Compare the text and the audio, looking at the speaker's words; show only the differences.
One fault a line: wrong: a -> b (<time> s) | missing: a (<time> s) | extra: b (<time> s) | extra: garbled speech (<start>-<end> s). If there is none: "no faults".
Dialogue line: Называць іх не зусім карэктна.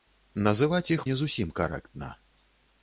no faults